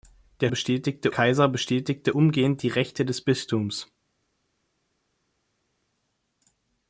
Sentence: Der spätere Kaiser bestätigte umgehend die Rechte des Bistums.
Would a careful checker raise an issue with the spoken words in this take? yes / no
yes